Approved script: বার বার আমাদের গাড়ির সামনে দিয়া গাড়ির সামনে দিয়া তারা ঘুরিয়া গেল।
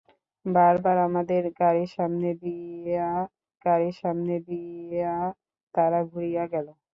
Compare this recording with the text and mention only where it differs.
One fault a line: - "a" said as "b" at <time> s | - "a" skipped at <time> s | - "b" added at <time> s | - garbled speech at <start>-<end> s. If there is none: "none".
none